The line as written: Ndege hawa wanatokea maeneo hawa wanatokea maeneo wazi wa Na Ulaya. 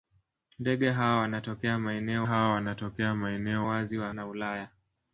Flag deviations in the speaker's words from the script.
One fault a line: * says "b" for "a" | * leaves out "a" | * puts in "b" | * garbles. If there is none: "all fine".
all fine